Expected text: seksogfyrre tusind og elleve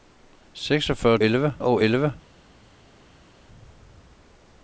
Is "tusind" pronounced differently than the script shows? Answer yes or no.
yes